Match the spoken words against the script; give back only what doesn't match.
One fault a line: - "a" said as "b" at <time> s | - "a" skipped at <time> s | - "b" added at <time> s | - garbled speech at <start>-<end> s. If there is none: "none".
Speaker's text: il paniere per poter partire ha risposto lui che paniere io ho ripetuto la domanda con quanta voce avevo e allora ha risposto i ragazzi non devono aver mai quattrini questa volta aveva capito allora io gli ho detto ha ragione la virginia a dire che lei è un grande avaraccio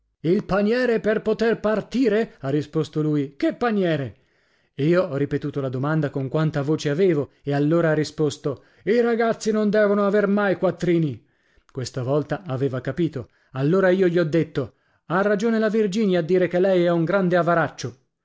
none